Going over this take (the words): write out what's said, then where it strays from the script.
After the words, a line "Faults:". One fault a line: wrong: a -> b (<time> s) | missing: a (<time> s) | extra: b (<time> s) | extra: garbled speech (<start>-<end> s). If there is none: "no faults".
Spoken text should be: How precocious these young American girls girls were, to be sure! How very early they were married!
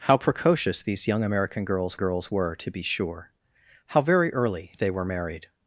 How precocious these young American girls girls were, to be sure! How very early they were married!
Faults:
no faults